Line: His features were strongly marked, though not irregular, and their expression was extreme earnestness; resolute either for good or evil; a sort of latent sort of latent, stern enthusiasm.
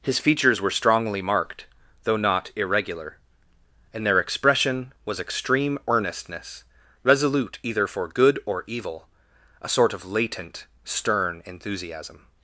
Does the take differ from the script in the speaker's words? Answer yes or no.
yes